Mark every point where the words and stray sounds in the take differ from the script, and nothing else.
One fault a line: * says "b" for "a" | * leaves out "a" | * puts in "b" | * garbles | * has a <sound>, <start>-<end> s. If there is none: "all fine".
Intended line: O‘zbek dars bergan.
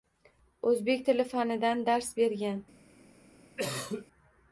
* puts in "tili fanidan"
* has a cough, 3.6-4.1 s